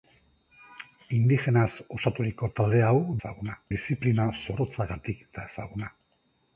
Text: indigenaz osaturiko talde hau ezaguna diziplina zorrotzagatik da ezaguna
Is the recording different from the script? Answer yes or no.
no